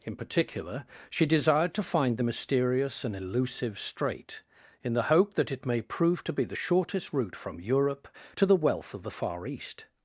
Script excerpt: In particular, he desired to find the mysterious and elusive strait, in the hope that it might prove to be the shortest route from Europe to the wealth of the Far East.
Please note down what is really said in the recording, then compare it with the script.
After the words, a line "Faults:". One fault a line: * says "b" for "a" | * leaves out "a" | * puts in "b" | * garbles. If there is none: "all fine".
In particular, she desired to find the mysterious and elusive strait, in the hope that it may prove to be the shortest route from Europe to the wealth of the Far East.
Faults:
* says "she" for "he"
* says "may" for "might"